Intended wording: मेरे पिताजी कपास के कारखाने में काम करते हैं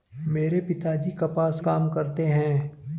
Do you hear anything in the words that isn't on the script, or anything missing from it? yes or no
yes